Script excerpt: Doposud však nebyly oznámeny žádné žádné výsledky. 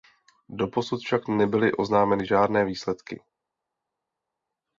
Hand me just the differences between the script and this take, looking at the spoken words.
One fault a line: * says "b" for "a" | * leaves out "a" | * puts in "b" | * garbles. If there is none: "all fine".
* leaves out "žádné"